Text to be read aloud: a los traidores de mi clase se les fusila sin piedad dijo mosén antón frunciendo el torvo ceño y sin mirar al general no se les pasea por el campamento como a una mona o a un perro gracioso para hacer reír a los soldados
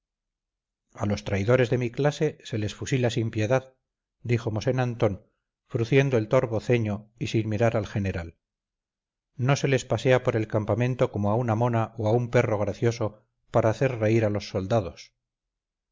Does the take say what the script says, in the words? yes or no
yes